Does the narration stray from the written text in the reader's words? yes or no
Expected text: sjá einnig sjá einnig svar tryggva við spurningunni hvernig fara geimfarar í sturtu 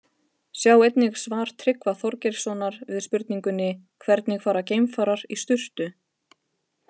yes